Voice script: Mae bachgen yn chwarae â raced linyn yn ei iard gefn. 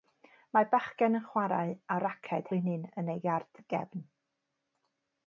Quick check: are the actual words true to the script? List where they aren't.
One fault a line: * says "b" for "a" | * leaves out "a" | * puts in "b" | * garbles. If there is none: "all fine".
all fine